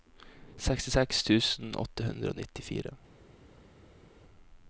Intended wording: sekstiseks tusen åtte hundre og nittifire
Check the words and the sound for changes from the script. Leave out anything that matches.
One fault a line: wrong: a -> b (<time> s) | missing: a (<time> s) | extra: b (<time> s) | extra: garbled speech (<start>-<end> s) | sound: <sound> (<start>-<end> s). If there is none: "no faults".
no faults